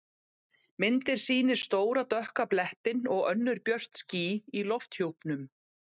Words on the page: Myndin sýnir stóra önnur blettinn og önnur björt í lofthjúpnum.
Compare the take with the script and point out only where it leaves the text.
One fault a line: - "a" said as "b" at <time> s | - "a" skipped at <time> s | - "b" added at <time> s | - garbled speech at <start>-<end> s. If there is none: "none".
- "önnur" said as "dökka" at 2.1 s
- "ský" added at 4.0 s